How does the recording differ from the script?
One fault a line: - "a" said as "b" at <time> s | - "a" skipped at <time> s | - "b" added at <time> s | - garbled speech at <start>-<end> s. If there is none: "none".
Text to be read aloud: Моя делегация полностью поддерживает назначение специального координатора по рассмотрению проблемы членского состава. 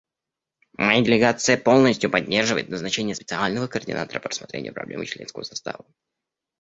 none